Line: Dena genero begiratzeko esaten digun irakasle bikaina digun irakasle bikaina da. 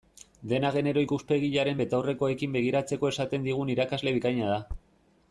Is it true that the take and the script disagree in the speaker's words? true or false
true